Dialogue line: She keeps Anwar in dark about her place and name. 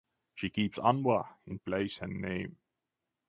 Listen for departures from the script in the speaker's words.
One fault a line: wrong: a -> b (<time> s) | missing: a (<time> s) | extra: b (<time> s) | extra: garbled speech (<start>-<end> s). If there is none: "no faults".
missing: dark about her (1.6 s)